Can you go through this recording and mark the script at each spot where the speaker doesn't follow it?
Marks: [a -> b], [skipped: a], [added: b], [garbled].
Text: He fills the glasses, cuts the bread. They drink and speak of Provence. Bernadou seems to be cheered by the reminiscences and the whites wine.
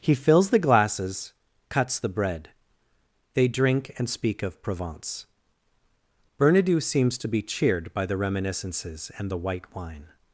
He fills the glasses, cuts the bread. They drink and speak of Provence. Bernadou seems to be cheered by the reminiscences and the [whites -> white] wine.